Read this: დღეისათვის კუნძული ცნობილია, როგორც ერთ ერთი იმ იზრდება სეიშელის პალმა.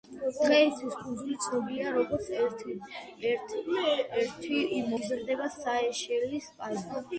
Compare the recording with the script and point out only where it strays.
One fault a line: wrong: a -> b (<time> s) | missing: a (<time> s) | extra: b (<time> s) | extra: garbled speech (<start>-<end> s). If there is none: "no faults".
no faults